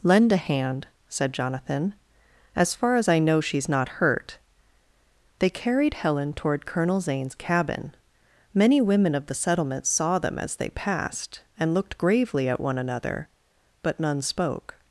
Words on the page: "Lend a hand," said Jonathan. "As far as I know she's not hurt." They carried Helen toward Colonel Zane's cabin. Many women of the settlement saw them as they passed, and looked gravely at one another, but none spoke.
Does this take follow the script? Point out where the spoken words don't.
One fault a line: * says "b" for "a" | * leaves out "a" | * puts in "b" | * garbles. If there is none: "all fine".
all fine